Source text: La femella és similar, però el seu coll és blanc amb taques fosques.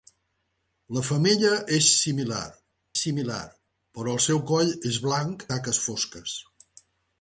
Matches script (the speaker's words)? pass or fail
fail